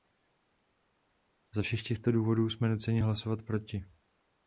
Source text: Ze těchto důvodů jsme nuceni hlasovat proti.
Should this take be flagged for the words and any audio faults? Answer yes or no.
yes